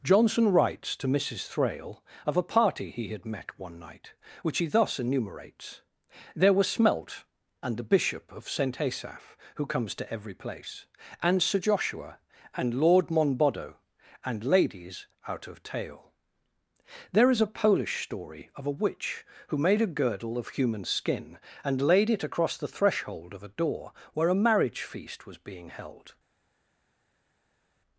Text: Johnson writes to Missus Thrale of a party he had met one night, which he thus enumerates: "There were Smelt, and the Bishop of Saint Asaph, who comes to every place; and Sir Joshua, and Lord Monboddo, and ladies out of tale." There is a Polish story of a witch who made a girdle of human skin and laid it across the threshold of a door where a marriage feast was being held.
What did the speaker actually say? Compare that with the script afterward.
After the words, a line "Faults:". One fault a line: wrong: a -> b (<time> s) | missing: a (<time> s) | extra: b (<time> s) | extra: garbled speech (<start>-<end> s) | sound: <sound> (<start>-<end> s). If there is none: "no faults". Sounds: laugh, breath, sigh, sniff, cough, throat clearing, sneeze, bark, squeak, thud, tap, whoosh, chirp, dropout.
Johnson writes to Missus Thrale of a party he had met one night, which he thus enumerates: "There were Smelt, and the Bishop of Saint Asaph, who comes to every place; and Sir Joshua, and Lord Monboddo, and ladies out of tale." There is a Polish story of a witch who made a girdle of human skin and laid it across the threshold of a door where a marriage feast was being held.
Faults:
no faults